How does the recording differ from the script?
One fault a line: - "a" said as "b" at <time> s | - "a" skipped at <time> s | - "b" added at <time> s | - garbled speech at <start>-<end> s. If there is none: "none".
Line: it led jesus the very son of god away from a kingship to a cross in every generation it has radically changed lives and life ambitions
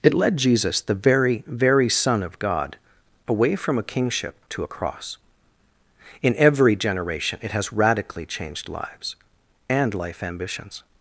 - "very" added at 1.4 s